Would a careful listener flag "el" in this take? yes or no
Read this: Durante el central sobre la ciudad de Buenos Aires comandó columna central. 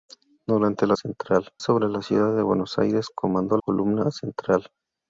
no